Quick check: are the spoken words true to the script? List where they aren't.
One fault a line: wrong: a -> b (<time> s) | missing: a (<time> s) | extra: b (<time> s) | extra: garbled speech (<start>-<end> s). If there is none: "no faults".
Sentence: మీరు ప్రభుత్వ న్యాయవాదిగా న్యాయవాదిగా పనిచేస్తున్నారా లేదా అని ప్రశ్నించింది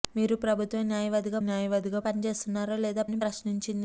no faults